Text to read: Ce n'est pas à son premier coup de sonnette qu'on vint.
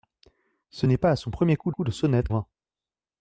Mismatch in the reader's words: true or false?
true